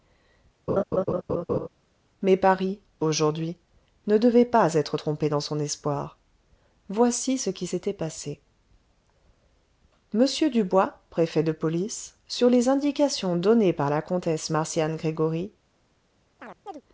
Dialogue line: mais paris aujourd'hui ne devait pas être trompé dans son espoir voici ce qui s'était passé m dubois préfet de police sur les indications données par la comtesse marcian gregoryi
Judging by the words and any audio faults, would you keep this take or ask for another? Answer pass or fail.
fail